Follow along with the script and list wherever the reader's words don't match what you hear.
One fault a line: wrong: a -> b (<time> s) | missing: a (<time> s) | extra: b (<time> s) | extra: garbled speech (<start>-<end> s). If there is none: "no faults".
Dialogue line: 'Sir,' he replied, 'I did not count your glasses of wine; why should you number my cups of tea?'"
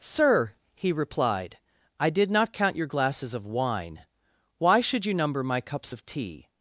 no faults